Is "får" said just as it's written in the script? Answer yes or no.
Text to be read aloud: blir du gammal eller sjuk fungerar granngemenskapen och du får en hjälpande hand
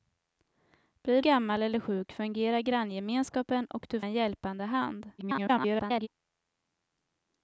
no